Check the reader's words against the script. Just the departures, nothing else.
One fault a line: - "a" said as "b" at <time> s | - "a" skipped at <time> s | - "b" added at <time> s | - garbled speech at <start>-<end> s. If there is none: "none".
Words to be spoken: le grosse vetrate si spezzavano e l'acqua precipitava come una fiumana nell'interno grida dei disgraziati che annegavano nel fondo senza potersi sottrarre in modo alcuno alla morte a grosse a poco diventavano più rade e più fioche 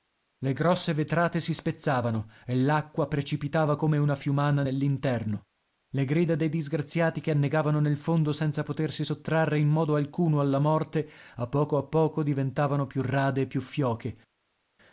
- "le" added at 5.9 s
- "grosse" said as "poco" at 11.5 s